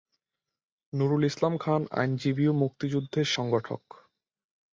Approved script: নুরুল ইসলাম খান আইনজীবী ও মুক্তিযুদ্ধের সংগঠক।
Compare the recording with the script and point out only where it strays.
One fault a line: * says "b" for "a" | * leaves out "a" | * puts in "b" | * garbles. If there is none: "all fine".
all fine